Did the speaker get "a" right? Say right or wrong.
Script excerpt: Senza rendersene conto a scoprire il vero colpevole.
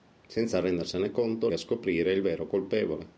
right